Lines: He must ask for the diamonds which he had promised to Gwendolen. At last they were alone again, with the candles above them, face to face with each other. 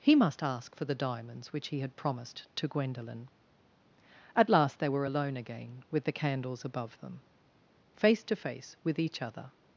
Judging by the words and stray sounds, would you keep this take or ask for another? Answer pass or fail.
pass